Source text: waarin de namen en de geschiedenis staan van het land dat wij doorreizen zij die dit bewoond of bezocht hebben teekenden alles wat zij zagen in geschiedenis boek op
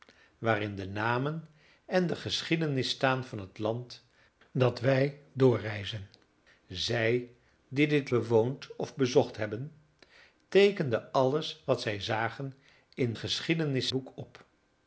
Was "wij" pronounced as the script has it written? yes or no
yes